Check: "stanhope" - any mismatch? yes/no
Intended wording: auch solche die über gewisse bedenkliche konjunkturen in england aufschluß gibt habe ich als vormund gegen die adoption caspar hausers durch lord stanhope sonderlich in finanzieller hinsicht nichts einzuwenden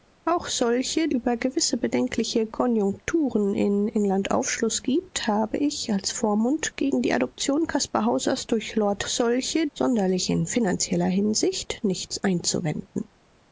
yes